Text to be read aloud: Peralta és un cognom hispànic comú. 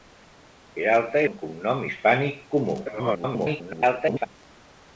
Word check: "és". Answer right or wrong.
wrong